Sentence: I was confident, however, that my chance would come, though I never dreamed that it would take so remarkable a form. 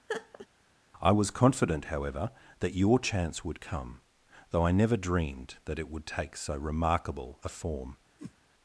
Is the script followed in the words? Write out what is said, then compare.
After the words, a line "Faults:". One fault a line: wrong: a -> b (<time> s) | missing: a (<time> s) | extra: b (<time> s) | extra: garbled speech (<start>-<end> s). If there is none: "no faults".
I was confident, however, that your chance would come, though I never dreamed that it would take so remarkable a form.
Faults:
wrong: my -> your (2.7 s)